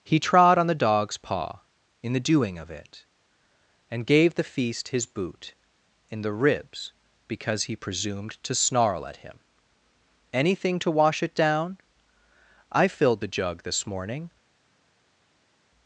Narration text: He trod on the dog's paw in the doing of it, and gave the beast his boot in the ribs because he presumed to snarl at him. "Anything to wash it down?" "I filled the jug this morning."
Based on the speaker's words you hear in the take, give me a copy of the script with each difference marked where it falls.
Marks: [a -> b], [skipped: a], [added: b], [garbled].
He trod on the dog's paw in the doing of it, and gave the [beast -> feast] his boot in the ribs because he presumed to snarl at him. "Anything to wash it down?" "I filled the jug this morning."